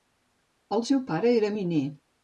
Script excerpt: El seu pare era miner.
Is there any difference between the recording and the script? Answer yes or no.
no